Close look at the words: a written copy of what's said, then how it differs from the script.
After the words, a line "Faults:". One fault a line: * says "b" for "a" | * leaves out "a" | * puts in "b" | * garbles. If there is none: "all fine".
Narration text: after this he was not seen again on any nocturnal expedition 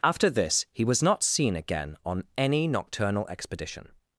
after this he was not seen again on any nocturnal expedition
Faults:
all fine